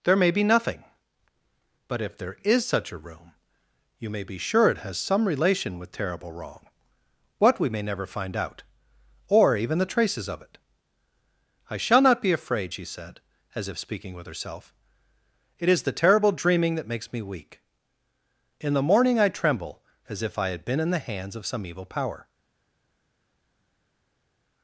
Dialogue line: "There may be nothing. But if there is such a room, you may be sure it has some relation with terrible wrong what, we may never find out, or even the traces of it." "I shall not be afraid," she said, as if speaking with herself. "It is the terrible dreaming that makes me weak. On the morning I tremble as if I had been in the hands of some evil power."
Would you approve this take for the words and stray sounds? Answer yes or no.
no